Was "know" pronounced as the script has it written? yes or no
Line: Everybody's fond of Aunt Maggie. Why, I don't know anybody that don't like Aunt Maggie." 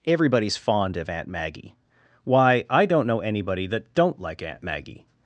yes